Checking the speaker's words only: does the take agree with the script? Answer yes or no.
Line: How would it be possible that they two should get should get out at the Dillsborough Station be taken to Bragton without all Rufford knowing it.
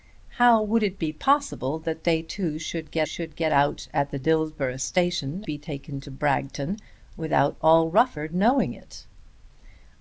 yes